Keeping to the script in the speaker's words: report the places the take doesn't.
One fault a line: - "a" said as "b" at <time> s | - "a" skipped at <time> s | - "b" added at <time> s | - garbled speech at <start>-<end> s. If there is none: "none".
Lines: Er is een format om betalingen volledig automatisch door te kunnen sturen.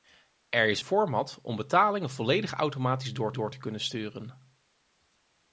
- "een" skipped at 0.8 s
- "door" added at 3.3 s